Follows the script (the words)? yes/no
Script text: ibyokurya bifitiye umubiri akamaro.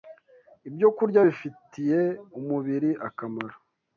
yes